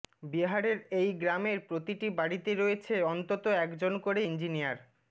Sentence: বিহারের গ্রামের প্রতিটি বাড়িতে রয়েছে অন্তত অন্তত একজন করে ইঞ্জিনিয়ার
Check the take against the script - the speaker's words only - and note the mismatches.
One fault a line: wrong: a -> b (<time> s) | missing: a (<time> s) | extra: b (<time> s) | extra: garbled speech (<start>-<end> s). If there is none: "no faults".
extra: এই (1.0 s)
missing: অন্তত (3.4 s)